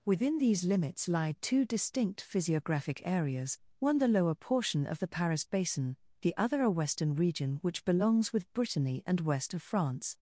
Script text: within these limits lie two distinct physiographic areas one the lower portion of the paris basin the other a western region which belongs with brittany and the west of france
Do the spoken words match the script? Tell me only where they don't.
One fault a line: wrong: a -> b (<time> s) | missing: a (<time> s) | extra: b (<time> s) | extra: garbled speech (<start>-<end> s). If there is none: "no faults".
missing: the (9.2 s)